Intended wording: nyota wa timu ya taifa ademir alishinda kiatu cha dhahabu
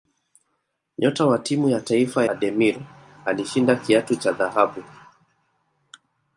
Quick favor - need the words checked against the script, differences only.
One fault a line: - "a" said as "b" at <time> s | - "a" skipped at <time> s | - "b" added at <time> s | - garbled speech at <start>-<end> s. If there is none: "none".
none